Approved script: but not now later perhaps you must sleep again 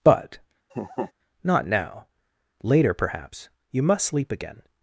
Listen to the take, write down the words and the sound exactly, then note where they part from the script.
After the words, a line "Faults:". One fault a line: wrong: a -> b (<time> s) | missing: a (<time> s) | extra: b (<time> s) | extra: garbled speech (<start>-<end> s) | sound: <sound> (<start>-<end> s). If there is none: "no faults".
but not now later perhaps you must sleep again
Faults:
sound: laugh (0.7-1.1 s)